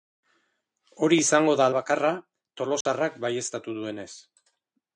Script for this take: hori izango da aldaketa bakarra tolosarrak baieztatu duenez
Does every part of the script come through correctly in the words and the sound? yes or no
no